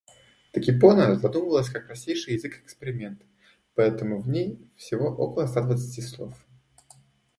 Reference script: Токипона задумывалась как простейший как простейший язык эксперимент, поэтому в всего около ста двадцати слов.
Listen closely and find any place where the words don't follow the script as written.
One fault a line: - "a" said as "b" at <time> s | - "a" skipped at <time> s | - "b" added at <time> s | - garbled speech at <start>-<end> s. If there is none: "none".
- "как простейший" skipped at 2.3 s
- "ней" added at 4.3 s